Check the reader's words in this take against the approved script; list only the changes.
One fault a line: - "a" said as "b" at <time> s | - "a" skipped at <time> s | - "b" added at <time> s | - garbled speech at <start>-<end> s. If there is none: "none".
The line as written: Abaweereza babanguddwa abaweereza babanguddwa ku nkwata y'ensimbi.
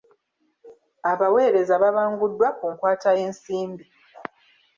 - "abaweereza babanguddwa" skipped at 2.5 s